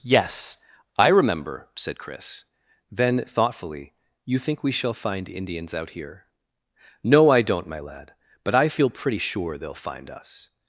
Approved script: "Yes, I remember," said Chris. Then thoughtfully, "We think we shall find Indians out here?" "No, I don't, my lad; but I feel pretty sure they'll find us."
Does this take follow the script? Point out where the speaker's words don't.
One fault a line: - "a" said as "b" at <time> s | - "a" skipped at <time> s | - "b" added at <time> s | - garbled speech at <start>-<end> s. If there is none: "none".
- "We" said as "You" at 4.3 s